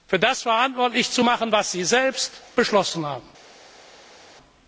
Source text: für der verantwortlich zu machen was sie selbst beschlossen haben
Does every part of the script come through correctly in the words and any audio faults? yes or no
no